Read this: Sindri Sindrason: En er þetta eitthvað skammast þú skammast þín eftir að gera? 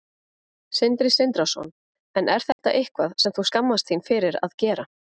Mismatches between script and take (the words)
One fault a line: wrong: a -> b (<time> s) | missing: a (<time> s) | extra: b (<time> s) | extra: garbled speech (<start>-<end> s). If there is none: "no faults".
wrong: skammast -> sem (3.2 s)
wrong: eftir -> fyrir (4.1 s)